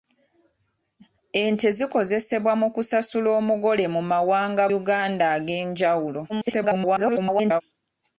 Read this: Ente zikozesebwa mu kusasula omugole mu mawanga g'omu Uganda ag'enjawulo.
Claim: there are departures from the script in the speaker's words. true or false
true